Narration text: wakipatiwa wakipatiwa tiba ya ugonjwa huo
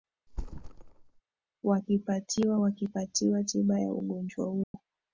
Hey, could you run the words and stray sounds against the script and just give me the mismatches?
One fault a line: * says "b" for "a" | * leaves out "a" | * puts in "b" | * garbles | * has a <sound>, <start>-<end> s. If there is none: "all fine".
* has a thud, 0.3-1.2 s
* has a dropout, 4.6-4.7 s